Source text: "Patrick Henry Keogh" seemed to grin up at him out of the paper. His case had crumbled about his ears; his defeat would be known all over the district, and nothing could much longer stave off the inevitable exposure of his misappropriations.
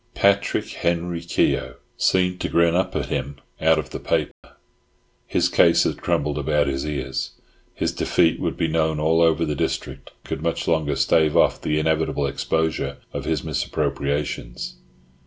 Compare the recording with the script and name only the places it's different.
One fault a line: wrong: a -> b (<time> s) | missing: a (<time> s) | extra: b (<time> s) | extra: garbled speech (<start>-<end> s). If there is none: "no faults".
missing: and nothing (10.1 s)